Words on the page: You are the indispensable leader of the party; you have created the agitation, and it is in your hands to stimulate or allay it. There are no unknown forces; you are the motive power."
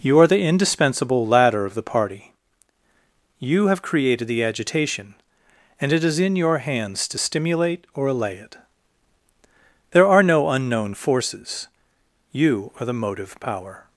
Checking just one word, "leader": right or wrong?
wrong